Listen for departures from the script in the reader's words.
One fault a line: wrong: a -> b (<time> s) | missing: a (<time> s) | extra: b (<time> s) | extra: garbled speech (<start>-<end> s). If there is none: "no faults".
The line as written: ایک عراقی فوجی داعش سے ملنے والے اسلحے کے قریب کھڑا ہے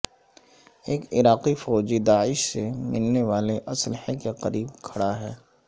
no faults